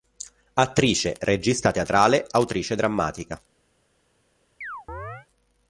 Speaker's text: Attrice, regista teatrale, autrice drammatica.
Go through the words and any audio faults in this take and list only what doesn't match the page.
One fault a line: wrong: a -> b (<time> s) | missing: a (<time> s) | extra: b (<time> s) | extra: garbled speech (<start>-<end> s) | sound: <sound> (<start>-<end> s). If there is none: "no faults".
sound: chirp (4.6-5.3 s)